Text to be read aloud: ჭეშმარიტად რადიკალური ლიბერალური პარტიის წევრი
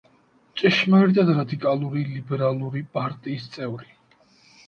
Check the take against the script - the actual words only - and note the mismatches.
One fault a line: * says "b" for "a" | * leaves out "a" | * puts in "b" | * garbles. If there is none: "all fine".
all fine